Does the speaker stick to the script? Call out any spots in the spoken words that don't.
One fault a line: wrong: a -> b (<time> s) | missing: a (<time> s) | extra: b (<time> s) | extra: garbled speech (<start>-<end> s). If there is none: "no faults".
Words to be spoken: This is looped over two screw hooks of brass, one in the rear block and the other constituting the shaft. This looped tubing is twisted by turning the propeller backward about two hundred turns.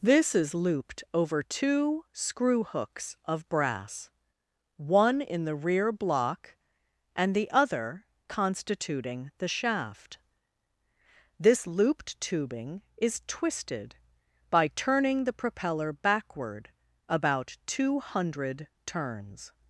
no faults